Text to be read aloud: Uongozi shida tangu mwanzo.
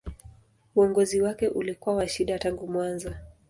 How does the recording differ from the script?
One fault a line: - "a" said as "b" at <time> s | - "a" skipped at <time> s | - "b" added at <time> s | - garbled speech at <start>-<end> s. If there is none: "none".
- "wake ulikuwa wa" added at 1.2 s